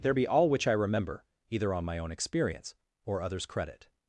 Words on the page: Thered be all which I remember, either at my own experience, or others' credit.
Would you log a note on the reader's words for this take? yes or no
yes